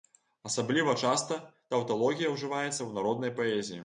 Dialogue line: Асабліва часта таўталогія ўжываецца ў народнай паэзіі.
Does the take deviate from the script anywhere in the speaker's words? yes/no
no